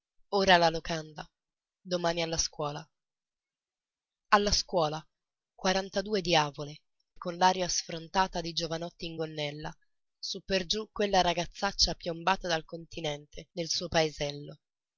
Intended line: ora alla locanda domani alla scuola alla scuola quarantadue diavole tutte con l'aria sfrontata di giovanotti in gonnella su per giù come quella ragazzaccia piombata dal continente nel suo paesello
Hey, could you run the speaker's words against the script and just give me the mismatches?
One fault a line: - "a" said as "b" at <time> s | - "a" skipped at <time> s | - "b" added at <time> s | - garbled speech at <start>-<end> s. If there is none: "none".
- "tutte" skipped at 6.8 s
- "come" skipped at 10.9 s